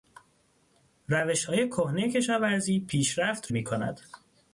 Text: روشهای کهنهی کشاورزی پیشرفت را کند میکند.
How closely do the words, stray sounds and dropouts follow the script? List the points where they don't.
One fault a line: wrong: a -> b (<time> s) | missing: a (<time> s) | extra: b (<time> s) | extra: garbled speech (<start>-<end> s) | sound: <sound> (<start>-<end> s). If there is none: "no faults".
missing: را کند (3.5 s)